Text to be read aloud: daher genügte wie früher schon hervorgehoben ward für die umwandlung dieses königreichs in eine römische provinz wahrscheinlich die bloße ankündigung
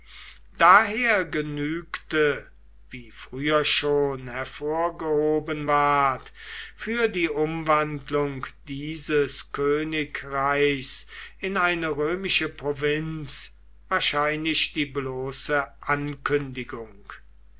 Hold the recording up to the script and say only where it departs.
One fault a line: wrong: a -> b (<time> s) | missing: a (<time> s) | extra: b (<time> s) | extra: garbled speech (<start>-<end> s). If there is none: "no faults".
no faults